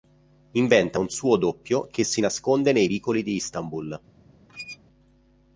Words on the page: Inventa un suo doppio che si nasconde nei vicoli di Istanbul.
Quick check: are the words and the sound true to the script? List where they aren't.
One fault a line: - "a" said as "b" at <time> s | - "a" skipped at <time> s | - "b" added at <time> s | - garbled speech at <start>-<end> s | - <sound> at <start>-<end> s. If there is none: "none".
- squeak at 4.5-4.8 s